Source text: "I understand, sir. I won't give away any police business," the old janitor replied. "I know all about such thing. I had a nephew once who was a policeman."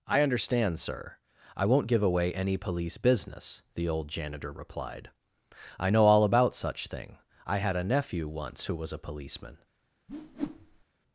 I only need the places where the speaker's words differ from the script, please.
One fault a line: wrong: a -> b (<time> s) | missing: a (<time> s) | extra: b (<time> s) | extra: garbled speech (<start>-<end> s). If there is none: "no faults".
no faults